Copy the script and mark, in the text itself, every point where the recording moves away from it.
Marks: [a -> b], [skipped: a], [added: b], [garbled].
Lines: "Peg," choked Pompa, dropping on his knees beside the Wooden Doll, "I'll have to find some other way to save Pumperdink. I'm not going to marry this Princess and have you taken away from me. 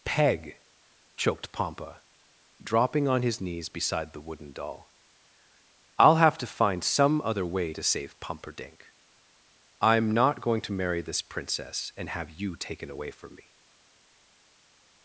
"Peg," choked Pompa, dropping on his knees beside the Wooden Doll, "I'll have to find some other way to save Pumperdink. I'm not going to marry this Princess and have you taken away from me.